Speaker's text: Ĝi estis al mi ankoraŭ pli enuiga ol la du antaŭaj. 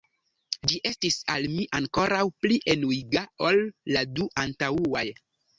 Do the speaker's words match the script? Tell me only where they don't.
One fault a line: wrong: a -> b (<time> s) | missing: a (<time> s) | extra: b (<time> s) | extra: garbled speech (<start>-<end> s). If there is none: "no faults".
no faults